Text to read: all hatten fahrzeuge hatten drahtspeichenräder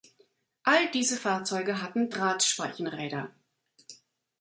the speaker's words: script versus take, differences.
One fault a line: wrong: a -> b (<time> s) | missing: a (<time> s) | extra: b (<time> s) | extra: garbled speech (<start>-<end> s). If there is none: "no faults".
wrong: hatten -> diese (0.9 s)